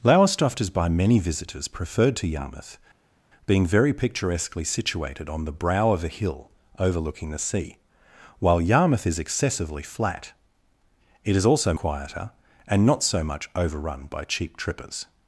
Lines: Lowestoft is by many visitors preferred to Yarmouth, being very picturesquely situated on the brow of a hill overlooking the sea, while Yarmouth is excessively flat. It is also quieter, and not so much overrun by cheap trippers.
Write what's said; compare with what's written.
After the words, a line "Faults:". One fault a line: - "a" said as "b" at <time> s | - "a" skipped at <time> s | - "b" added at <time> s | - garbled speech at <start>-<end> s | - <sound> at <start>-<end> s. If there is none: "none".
Lowestoft is by many visitors preferred to Yarmouth, being very picturesquely situated on the brow of a hill overlooking the sea, while Yarmouth is excessively flat. It is also quieter, and not so much overrun by cheap trippers.
Faults:
none